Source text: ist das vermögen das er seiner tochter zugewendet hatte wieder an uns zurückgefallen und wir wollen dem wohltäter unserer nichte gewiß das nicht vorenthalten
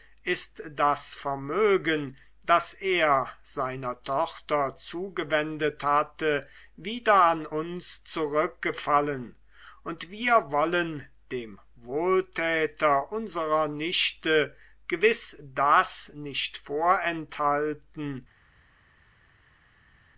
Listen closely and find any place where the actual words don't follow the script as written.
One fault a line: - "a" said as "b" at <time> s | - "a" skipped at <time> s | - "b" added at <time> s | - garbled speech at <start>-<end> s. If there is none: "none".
none